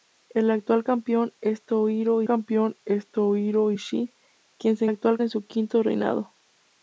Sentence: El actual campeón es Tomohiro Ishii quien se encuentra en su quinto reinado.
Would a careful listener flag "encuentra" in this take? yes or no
yes